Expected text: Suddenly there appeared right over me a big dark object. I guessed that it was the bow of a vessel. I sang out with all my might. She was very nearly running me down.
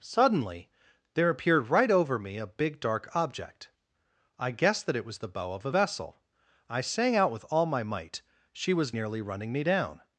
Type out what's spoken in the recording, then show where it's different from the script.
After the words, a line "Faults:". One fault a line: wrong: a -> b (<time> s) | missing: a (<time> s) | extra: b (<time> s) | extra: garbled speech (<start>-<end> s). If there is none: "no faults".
Suddenly there appeared right over me a big dark object. I guessed that it was the bow of a vessel. I sang out with all my might. She was nearly running me down.
Faults:
missing: very (8.9 s)